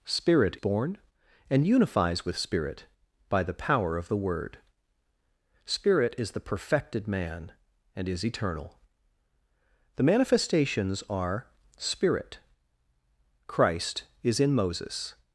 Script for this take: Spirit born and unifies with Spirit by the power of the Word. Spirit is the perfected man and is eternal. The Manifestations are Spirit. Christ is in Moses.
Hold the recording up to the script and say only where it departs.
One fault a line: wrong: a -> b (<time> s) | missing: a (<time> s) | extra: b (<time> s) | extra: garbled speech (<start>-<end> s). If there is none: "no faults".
no faults